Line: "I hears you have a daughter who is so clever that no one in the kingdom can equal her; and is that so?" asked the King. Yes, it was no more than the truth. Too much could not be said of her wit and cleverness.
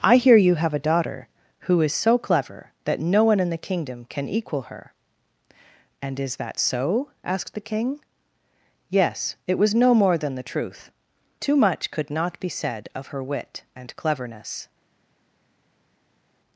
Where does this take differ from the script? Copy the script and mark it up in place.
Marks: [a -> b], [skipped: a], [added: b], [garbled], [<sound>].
"I [hears -> hear] you have a daughter who is so clever that no one in the kingdom can equal her; and is that so?" asked the King. Yes, it was no more than the truth. Too much could not be said of her wit and cleverness.